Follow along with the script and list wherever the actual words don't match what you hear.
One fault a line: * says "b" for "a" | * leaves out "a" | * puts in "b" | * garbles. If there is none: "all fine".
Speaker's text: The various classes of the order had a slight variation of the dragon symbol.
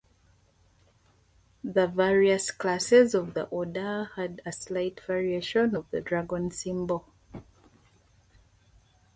all fine